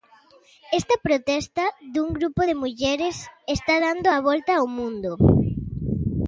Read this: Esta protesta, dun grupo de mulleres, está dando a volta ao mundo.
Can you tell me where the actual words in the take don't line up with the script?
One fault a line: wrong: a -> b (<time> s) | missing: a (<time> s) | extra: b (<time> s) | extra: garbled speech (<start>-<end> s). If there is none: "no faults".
no faults